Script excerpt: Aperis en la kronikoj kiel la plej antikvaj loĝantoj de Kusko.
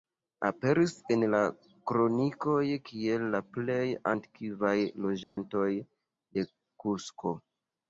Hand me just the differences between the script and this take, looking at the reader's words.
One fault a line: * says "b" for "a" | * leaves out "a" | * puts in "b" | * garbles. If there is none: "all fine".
all fine